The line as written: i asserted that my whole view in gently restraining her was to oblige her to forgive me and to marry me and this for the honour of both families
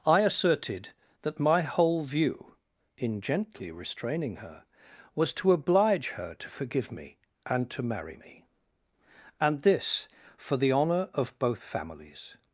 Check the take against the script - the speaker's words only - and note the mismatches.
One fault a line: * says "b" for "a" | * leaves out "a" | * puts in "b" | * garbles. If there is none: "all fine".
all fine